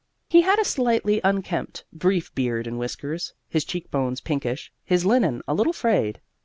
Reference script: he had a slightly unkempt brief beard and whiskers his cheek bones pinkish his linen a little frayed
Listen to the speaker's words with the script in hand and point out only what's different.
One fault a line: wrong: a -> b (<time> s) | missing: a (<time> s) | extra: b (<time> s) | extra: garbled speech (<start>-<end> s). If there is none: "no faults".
no faults